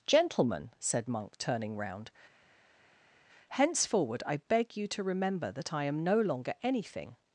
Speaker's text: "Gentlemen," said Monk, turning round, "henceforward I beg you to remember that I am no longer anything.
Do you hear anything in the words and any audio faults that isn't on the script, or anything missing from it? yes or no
no